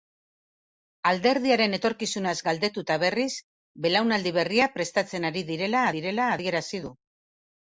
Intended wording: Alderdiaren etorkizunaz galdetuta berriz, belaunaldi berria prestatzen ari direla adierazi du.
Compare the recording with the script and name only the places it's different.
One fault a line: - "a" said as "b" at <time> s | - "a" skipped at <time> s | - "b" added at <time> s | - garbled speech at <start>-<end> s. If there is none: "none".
- "direla" added at 6.0 s